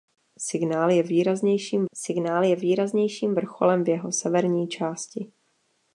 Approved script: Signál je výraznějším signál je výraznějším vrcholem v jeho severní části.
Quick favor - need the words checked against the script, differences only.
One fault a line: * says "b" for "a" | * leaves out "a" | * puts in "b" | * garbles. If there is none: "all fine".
all fine